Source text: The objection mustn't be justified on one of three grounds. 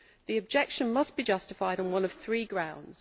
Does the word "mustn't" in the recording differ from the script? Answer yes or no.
yes